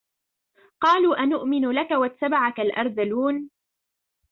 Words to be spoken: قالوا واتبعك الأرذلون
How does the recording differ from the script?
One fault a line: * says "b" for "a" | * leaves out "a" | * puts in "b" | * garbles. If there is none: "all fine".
* puts in "أنؤمن لك"